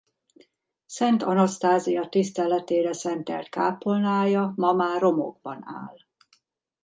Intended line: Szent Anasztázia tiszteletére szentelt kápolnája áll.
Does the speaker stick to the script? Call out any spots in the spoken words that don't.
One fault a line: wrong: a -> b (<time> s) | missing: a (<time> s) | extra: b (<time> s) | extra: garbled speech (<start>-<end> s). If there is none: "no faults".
extra: ma már romokban (4.5 s)